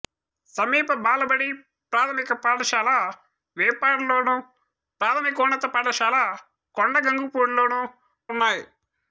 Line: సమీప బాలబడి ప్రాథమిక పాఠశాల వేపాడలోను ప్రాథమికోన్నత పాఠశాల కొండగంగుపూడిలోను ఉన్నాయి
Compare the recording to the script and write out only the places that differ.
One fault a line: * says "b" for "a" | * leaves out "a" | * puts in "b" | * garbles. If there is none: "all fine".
all fine